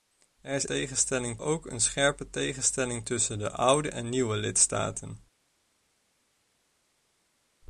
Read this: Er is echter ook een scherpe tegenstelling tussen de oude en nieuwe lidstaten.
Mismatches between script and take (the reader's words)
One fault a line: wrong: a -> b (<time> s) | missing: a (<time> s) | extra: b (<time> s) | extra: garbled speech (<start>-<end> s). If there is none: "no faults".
wrong: echter -> tegenstelling (0.6 s)